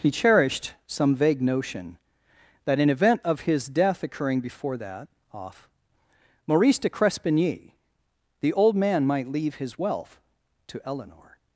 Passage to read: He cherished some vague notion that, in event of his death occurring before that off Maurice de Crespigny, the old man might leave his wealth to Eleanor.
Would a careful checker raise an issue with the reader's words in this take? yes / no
no